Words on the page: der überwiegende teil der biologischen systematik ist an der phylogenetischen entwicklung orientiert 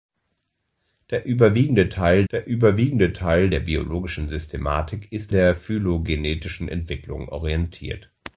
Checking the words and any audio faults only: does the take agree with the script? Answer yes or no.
no